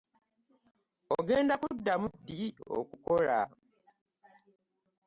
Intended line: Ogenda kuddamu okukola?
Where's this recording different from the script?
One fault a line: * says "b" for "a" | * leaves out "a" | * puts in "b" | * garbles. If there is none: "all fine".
* puts in "ddi"